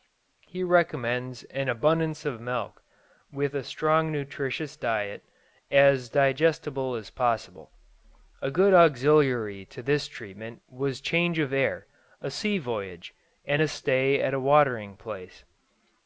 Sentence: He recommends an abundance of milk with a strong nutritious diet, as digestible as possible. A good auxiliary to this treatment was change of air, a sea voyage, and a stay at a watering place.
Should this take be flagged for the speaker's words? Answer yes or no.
no